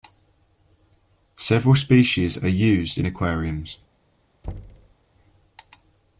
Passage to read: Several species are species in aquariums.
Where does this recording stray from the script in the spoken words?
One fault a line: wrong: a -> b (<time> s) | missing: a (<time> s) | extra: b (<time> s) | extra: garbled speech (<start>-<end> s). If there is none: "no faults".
wrong: species -> used (2.5 s)